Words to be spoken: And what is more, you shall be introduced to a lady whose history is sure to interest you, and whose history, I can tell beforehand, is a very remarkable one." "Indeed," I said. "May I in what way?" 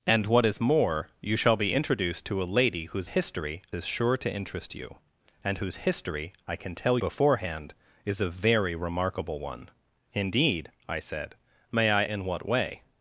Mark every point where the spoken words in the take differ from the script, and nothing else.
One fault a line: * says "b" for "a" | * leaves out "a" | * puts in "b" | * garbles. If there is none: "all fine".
all fine